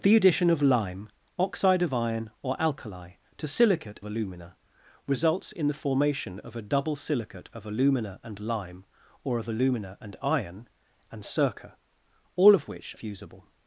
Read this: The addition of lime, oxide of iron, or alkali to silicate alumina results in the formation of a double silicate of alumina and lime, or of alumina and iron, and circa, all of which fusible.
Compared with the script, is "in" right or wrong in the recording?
right